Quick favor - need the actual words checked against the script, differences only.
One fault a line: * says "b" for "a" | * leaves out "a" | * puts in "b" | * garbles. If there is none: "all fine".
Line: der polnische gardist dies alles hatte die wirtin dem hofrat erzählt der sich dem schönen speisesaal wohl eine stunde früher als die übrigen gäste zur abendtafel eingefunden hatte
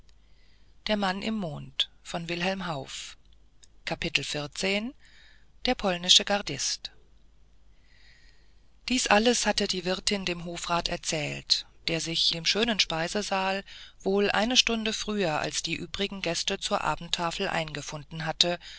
all fine